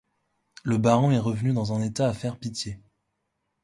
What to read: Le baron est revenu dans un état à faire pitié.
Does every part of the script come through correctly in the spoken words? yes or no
yes